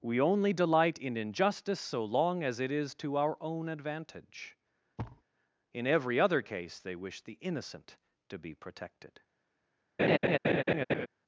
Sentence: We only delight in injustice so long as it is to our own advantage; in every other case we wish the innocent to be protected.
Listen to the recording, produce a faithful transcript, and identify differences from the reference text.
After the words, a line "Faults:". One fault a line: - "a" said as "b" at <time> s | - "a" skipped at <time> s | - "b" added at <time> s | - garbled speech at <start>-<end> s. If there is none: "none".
We only delight in injustice so long as it is to our own advantage; in every other case they wish the innocent to be protected.
Faults:
- "we" said as "they" at 6.8 s